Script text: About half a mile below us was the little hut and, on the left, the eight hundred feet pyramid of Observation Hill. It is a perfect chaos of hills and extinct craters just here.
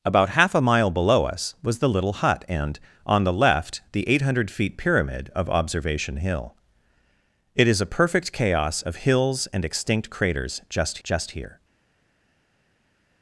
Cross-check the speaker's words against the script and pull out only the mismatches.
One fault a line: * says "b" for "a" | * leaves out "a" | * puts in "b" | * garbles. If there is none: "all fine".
* puts in "just"